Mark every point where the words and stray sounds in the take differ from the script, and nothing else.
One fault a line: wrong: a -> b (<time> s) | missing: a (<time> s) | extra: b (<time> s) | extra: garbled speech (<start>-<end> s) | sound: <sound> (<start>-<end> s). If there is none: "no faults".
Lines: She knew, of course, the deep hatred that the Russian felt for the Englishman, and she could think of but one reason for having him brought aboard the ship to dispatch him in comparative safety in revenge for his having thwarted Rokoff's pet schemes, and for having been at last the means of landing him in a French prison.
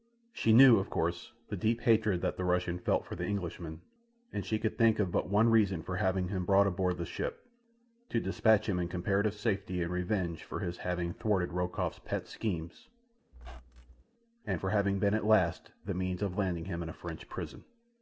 sound: squeak (13.3-14.0 s)